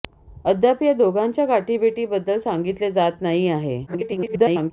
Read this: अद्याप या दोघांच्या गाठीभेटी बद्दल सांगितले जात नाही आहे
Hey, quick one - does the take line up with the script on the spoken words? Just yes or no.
no